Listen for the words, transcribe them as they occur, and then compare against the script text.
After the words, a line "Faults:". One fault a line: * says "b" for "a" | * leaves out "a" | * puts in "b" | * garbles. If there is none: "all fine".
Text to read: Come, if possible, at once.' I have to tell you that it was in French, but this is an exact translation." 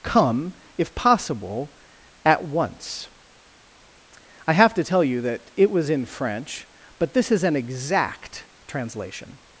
Come, if possible, at once.' I have to tell you that it was in French, but this is an exact translation."
Faults:
all fine